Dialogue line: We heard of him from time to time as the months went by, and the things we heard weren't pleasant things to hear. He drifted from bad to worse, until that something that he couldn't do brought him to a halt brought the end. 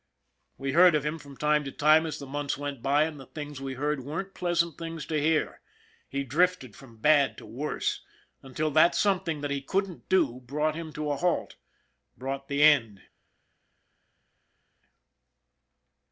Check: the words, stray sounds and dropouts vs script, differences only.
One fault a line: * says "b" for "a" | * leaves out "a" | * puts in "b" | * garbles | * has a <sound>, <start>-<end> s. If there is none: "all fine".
all fine